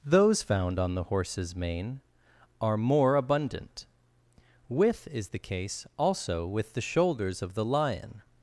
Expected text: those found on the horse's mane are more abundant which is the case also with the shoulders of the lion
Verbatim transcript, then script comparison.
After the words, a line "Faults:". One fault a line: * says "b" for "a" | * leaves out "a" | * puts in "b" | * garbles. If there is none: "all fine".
those found on the horse's mane are more abundant with is the case also with the shoulders of the lion
Faults:
* says "with" for "which"